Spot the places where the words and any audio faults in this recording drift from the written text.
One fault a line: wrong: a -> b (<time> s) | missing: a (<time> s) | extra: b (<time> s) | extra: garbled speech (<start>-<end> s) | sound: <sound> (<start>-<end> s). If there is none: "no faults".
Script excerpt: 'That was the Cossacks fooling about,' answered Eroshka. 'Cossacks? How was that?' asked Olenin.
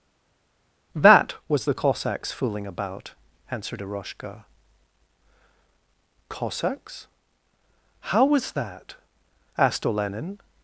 no faults